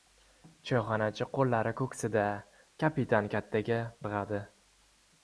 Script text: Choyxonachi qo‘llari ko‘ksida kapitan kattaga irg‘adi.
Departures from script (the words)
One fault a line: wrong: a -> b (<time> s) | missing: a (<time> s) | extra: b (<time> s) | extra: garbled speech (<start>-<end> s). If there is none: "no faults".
no faults